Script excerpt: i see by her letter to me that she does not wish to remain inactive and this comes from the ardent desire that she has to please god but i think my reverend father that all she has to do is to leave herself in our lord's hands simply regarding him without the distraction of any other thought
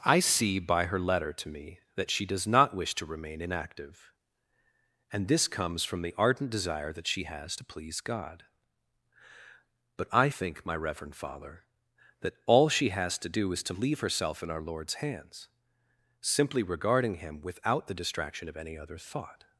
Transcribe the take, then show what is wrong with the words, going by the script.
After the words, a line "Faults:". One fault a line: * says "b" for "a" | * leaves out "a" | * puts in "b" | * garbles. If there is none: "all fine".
i see by her letter to me that she does not wish to remain inactive and this comes from the ardent desire that she has to please god but i think my reverend father that all she has to do is to leave herself in our lord's hands simply regarding him without the distraction of any other thought
Faults:
all fine